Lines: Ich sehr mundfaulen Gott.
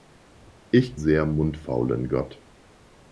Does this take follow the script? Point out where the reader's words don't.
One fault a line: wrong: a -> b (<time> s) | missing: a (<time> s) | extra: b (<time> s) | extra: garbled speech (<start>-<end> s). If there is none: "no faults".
no faults